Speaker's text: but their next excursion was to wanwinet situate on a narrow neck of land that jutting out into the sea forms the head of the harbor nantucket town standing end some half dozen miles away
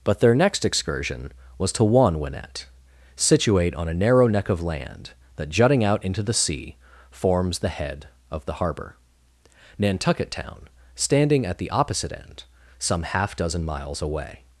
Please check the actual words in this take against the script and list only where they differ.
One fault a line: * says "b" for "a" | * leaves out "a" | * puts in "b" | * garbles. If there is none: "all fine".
* puts in "at the opposite"